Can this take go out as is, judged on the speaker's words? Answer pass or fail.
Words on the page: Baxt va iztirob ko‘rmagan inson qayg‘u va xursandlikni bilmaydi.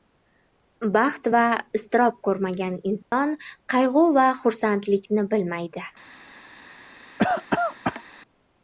pass